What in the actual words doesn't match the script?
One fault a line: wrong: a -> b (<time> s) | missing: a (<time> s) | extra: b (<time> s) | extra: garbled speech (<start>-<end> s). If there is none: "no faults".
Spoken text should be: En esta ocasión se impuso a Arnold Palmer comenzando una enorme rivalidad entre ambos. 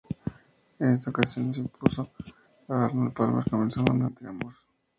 missing: enorme rivalidad (4.1 s)